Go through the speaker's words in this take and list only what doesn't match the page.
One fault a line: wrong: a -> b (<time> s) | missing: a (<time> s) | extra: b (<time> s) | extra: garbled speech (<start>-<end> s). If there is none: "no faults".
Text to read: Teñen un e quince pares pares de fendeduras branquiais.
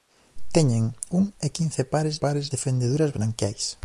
no faults